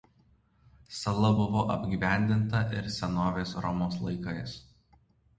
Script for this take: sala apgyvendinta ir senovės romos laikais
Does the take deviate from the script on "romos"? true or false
false